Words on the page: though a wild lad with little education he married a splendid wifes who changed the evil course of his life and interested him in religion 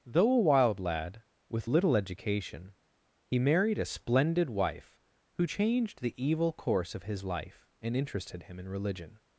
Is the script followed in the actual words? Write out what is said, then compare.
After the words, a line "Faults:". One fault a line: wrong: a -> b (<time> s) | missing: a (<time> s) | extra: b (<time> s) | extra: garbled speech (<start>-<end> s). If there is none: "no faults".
though a wild lad with little education he married a splendid wife who changed the evil course of his life and interested him in religion
Faults:
wrong: wifes -> wife (4.5 s)